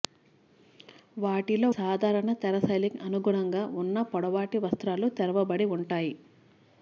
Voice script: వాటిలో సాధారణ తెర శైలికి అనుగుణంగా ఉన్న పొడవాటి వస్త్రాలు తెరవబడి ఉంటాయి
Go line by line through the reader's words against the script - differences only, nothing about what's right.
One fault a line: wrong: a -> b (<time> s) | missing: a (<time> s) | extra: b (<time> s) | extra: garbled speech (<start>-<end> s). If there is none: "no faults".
no faults